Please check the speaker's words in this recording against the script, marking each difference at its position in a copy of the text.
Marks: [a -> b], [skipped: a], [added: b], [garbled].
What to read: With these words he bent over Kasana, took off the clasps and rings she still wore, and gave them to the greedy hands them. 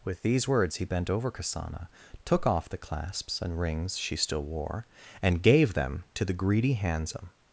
With these words he bent over Kasana, took off the clasps and rings she still wore, and gave them to the greedy hands them.